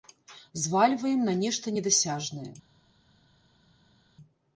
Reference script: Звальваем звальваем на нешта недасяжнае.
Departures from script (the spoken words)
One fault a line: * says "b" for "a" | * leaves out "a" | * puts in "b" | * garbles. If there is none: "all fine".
* leaves out "звальваем"